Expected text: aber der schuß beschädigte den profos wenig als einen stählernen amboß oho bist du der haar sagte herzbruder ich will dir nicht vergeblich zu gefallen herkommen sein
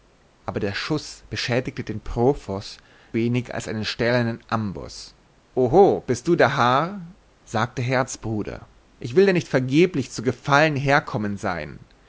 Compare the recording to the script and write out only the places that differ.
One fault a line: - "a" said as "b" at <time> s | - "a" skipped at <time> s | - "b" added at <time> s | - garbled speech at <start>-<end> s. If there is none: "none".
none